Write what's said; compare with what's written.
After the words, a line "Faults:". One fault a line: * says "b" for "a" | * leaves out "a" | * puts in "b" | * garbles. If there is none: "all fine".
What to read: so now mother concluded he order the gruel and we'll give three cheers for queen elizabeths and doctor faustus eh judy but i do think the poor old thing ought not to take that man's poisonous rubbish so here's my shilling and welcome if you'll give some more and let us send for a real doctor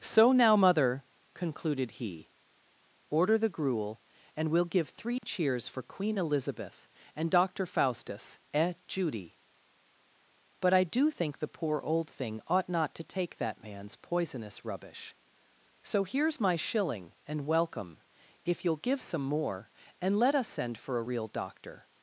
so now mother concluded he order the gruel and we'll give three cheers for queen elizabeth and doctor faustus eh judy but i do think the poor old thing ought not to take that man's poisonous rubbish so here's my shilling and welcome if you'll give some more and let us send for a real doctor
Faults:
* says "elizabeth" for "elizabeths"